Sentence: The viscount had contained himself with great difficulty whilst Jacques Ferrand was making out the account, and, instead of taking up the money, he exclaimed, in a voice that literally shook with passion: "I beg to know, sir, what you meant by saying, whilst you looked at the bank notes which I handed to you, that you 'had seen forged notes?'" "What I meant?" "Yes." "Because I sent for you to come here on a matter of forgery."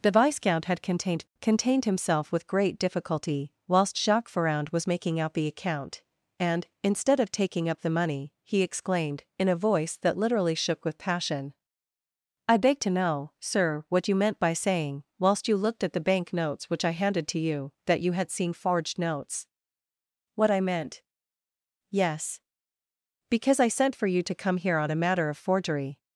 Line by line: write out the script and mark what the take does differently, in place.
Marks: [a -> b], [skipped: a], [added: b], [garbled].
The viscount had contained [added: contained] himself with great difficulty whilst Jacques Ferrand was making out the account, and, instead of taking up the money, he exclaimed, in a voice that literally shook with passion: "I beg to know, sir, what you meant by saying, whilst you looked at the bank notes which I handed to you, that you 'had seen forged notes?'" "What I meant?" "Yes." "Because I sent for you to come here on a matter of forgery."